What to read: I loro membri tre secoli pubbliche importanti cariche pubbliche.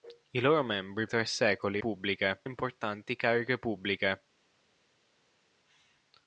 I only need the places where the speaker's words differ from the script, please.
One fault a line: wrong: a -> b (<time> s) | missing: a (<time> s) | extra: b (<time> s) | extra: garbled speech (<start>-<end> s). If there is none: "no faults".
no faults